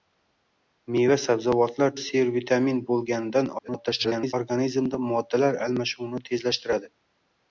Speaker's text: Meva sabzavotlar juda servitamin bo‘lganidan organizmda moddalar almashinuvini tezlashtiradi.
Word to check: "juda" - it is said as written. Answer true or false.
false